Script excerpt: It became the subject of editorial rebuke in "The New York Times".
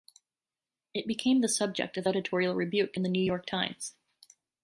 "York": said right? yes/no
yes